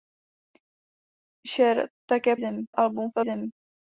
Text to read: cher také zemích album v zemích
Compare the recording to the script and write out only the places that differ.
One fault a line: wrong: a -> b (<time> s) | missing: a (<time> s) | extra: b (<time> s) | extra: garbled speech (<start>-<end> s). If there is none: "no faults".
no faults